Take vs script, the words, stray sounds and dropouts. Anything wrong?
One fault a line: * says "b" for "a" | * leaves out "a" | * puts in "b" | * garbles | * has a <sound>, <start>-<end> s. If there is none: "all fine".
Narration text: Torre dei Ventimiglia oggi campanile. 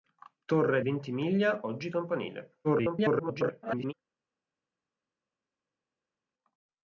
* leaves out "dei"
* garbles